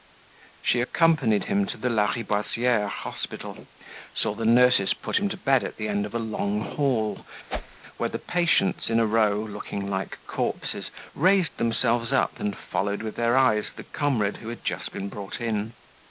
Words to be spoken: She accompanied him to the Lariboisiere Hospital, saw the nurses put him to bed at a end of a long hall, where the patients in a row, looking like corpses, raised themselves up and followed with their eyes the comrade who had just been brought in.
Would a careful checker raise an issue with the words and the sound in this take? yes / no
yes